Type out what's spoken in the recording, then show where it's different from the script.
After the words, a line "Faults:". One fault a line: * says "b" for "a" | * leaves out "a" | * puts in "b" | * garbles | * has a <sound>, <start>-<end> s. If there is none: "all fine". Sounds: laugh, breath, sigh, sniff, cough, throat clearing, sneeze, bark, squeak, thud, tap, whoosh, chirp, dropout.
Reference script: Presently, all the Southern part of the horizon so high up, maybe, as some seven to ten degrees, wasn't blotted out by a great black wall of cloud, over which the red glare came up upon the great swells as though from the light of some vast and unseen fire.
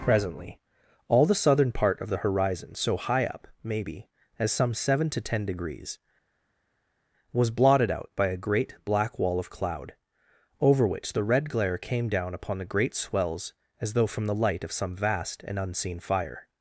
Presently, all the Southern part of the horizon so high up, maybe, as some seven to ten degrees, was blotted out by a great black wall of cloud, over which the red glare came down upon the great swells as though from the light of some vast and unseen fire.
Faults:
* says "was" for "wasn't"
* says "down" for "up"